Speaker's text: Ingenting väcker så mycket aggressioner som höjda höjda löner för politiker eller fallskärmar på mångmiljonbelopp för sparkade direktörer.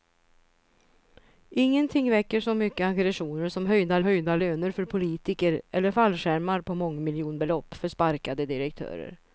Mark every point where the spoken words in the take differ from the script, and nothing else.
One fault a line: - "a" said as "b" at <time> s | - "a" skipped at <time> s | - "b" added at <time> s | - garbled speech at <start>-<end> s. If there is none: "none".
none